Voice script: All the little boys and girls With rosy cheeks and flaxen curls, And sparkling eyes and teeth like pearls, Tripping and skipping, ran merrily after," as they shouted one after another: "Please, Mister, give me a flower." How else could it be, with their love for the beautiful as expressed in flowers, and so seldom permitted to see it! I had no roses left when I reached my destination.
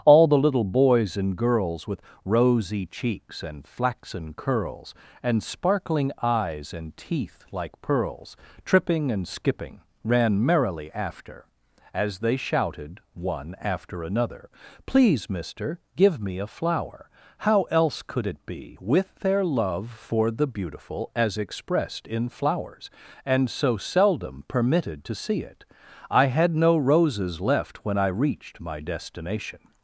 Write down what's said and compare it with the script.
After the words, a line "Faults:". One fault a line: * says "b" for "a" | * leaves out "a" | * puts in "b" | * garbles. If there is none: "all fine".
All the little boys and girls With rosy cheeks and flaxen curls, And sparkling eyes and teeth like pearls, Tripping and skipping, ran merrily after," as they shouted one after another: "Please, Mister, give me a flower." How else could it be, with their love for the beautiful as expressed in flowers, and so seldom permitted to see it! I had no roses left when I reached my destination.
Faults:
all fine